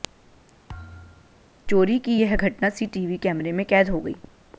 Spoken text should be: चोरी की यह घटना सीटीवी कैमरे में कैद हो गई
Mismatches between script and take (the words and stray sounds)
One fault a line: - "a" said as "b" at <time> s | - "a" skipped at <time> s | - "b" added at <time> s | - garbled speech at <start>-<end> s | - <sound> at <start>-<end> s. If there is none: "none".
- thud at 0.7-1.5 s